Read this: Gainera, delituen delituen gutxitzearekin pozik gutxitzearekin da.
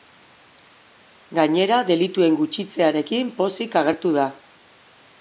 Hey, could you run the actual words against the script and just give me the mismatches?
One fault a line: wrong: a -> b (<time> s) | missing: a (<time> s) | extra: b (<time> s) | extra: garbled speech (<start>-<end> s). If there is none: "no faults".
missing: delituen (2.4 s)
wrong: gutxitzearekin -> agertu (3.9 s)